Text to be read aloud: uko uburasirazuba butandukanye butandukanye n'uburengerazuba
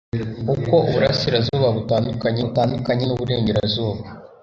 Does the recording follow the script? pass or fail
pass